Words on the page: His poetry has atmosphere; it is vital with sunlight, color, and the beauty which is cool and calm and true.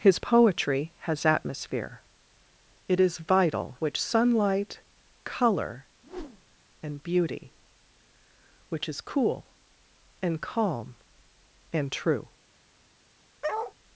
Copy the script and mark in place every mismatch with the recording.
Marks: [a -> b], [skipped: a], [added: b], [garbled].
His poetry has atmosphere; it is vital [with -> which] sunlight, color, and [skipped: the] beauty which is cool and calm and true.